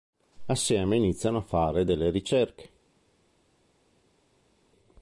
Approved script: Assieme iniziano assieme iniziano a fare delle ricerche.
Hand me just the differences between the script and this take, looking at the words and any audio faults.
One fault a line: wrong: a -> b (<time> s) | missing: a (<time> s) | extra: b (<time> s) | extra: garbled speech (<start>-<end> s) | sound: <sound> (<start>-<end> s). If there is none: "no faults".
missing: assieme iniziano (1.4 s)